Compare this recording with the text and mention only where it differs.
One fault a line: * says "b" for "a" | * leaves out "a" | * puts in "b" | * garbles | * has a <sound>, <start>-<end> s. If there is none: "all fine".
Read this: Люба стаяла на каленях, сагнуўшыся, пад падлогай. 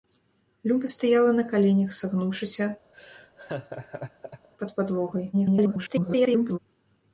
* has a laugh, 2.9-4.5 s
* garbles